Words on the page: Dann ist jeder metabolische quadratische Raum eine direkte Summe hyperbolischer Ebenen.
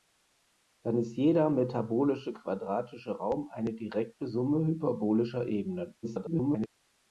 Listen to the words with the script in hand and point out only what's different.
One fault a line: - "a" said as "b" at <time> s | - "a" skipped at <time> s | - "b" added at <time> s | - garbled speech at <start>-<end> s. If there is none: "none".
- garbled speech at 6.0-6.7 s